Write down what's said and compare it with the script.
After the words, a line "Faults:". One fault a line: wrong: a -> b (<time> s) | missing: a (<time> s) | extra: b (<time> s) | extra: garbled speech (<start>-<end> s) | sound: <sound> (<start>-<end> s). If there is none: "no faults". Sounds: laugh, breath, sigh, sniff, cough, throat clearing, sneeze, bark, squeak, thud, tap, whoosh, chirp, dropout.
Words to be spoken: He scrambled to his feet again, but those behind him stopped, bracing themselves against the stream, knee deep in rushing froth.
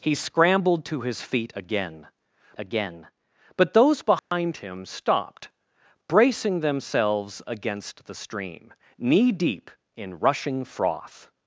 He scrambled to his feet again again, but those behind him stopped, bracing themselves against the stream, knee deep in rushing froth.
Faults:
extra: again (2.6 s)
sound: dropout (4.2-4.3 s)